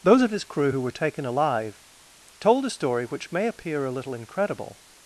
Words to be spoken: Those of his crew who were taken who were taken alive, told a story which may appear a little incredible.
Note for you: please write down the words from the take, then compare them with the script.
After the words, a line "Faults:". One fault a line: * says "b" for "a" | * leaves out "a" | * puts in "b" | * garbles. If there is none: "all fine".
Those of his crew who were taken alive, told a story which may appear a little incredible.
Faults:
* leaves out "who were taken"